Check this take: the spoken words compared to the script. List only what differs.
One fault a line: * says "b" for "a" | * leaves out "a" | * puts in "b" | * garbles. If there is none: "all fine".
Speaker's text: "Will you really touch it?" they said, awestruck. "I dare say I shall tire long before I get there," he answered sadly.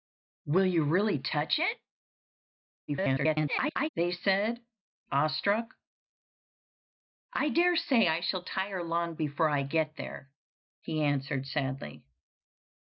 * garbles